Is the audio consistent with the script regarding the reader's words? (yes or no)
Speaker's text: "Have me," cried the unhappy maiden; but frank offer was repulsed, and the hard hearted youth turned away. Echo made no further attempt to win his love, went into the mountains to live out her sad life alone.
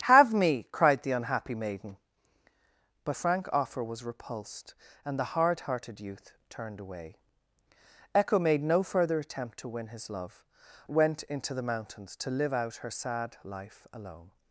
yes